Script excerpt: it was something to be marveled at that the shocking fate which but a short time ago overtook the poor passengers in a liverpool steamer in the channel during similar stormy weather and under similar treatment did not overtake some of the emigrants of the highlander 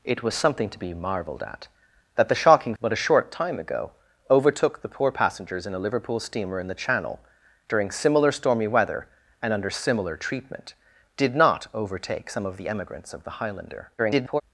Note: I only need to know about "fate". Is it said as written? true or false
false